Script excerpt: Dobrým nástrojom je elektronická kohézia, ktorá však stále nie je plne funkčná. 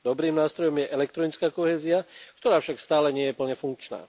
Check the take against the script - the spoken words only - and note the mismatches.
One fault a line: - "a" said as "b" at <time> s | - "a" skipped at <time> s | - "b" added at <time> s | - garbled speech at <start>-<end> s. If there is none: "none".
none